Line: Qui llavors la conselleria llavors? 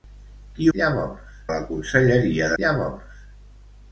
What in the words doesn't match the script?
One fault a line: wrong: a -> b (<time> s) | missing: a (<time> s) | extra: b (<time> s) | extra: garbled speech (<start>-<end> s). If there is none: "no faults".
no faults